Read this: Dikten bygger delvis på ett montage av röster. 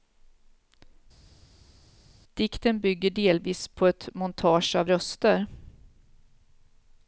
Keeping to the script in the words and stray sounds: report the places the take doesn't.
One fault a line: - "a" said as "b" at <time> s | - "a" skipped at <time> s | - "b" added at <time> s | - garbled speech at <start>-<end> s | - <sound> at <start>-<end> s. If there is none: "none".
none